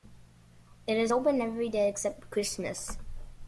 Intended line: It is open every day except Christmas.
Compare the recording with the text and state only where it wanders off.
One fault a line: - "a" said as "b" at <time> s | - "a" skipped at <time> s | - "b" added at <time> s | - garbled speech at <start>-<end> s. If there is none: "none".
none